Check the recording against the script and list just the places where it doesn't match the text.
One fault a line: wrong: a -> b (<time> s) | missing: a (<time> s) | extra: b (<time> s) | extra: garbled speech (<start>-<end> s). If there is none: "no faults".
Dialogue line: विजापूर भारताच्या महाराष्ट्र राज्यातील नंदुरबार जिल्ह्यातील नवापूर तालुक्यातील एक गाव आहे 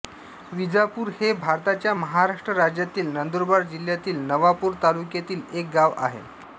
extra: हे (1.2 s)